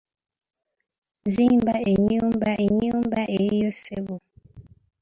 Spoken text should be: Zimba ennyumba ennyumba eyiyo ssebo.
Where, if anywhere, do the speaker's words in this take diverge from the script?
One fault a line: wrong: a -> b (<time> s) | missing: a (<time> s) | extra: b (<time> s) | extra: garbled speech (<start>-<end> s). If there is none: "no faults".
no faults